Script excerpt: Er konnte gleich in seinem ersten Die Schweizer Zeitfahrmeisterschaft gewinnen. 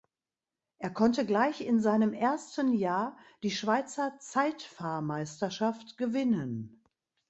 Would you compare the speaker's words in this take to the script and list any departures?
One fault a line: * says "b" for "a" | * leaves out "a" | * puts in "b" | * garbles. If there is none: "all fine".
* puts in "Jahr"